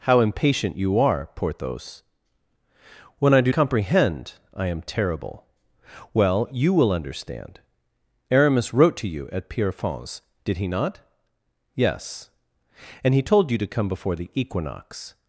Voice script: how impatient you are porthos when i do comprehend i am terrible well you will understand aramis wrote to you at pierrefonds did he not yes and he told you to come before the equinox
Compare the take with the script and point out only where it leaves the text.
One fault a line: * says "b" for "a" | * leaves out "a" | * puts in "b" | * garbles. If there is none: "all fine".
all fine